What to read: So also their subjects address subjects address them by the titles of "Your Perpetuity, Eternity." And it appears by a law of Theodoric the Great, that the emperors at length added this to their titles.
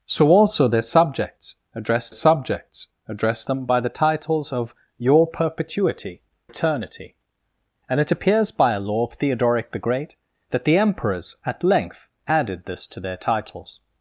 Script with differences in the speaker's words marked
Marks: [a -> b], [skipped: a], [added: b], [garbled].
So also their subjects address subjects address them by the titles of "Your Perpetuity, Eternity." And it appears by a law of Theodoric the Great, that the emperors at length added this to their titles.